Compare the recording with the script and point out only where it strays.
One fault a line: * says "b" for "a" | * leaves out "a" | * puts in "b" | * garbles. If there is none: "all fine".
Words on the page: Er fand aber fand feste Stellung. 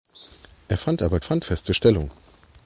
all fine